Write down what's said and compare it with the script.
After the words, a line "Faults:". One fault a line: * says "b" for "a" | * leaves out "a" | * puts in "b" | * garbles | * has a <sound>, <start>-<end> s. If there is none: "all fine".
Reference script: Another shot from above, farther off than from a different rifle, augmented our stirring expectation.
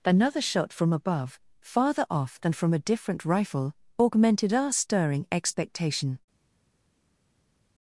Another shot from above, farther off than from a different rifle, augmented our stirring expectation.
Faults:
all fine